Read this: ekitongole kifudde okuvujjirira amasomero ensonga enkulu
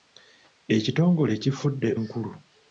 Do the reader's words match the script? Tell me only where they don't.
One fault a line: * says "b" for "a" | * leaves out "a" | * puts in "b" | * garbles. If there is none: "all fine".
* leaves out "okuvujjirira amasomero ensonga"